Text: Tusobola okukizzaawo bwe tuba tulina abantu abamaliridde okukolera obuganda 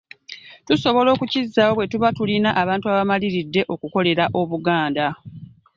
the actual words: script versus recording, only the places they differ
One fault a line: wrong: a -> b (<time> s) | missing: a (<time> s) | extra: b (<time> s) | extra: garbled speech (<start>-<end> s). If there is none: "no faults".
no faults